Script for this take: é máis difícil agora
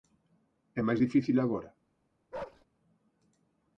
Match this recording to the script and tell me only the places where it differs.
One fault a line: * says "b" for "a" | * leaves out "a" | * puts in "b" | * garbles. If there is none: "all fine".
all fine